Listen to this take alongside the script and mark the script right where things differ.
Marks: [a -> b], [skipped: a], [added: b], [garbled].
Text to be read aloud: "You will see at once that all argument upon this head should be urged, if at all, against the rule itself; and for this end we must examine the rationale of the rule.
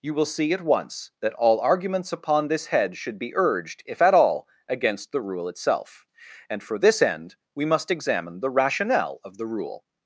"You will see at once that all [argument -> arguments] upon this head should be urged, if at all, against the rule itself; and for this end we must examine the rationale of the rule.